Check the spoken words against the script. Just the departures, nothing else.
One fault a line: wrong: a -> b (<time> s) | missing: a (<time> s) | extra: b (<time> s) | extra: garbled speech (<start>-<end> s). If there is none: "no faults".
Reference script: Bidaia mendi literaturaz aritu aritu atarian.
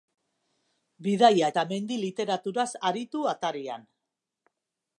extra: eta (1.5 s)
missing: aritu (3.3 s)